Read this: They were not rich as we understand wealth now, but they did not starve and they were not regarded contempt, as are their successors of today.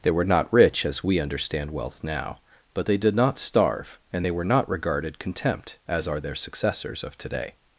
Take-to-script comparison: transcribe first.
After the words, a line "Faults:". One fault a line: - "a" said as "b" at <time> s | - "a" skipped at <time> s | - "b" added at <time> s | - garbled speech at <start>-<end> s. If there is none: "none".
They were not rich as we understand wealth now, but they did not starve and they were not regarded contempt, as are their successors of today.
Faults:
none